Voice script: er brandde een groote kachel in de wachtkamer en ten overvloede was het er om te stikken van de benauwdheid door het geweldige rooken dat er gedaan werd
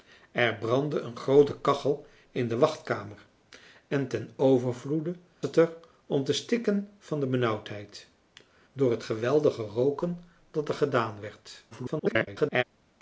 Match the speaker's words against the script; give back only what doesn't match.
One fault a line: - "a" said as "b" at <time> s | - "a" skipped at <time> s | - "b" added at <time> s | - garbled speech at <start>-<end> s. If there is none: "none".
- "was" skipped at 5.2 s
- garbled speech at 11.7-12.6 s